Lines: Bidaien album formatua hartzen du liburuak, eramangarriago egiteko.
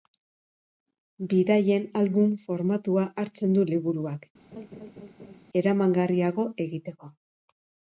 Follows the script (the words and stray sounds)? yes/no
no